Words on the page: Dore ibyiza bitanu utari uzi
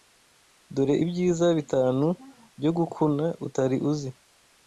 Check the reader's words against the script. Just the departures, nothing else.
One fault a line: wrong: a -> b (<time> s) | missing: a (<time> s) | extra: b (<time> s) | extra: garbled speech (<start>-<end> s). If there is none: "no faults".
extra: byo gukuna (2.6 s)